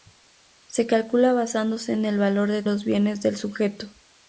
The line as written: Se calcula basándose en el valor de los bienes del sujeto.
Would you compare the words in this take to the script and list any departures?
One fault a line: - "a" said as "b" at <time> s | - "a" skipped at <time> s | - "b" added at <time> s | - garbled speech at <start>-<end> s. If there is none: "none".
none